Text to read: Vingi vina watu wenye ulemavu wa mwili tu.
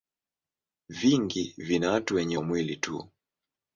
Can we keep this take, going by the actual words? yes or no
no